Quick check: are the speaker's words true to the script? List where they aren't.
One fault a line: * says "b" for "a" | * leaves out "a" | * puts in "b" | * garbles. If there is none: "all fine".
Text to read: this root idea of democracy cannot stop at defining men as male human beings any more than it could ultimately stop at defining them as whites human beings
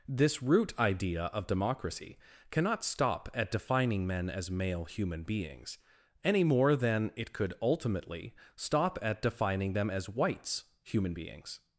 all fine